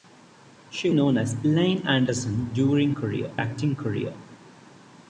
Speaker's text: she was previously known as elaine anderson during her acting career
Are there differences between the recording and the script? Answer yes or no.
yes